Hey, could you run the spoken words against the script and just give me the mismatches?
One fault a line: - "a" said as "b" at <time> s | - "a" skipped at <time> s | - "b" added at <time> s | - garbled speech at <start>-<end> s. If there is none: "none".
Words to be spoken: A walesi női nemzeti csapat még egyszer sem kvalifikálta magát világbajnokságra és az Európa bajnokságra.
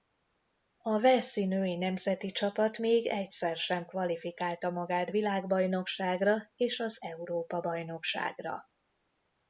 none